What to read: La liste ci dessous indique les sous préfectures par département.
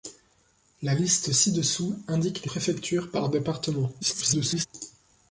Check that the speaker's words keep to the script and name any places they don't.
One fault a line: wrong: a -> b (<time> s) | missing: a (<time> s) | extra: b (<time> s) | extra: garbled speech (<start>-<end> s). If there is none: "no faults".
missing: sous (2.5 s)
extra: garbled speech (4.0-4.7 s)